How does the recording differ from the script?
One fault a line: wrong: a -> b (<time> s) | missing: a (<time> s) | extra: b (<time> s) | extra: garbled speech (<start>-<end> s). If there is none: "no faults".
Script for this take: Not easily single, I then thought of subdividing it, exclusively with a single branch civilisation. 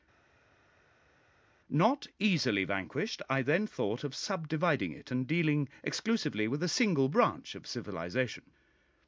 wrong: single -> vanquished (2.6 s)
extra: and dealing (5.1 s)
extra: of (7.5 s)